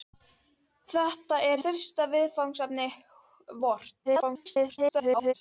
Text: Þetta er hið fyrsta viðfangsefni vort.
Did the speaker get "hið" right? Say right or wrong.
wrong